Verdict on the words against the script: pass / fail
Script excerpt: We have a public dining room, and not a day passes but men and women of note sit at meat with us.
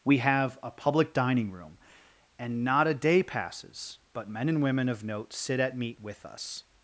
pass